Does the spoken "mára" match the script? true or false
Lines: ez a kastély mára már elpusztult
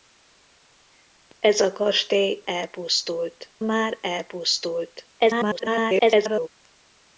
false